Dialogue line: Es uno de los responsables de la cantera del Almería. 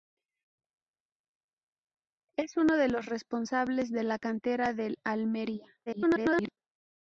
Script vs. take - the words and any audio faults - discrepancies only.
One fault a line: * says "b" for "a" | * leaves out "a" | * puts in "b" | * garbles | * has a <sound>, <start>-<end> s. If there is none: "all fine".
* garbles